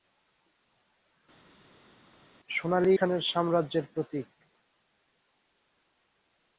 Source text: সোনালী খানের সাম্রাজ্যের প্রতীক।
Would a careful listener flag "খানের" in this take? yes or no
no